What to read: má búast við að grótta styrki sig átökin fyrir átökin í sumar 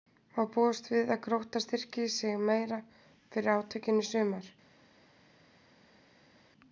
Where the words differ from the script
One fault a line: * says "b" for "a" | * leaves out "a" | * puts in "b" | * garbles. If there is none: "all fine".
* says "meira" for "átökin"